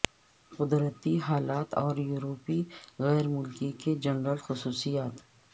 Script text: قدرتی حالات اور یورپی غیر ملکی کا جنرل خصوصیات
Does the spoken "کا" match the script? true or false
false